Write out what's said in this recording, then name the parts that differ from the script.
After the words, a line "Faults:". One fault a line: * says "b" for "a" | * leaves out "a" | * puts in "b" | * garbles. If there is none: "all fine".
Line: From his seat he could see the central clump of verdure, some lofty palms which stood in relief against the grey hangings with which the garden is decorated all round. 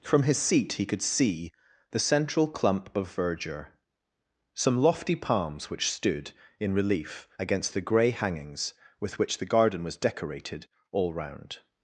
From his seat he could see the central clump of verdure, some lofty palms which stood in relief against the grey hangings with which the garden was decorated all round.
Faults:
* says "was" for "is"